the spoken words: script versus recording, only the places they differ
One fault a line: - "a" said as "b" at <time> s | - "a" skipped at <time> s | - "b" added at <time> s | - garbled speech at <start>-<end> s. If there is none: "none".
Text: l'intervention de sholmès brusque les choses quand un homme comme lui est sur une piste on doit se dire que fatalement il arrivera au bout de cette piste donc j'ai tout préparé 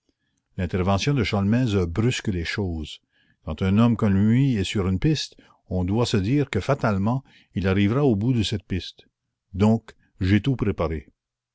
none